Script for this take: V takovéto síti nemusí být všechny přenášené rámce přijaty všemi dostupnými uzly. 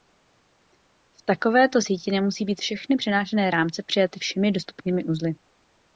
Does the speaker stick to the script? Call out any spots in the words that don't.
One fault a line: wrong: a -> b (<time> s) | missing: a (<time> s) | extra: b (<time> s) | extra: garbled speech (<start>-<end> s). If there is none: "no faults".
no faults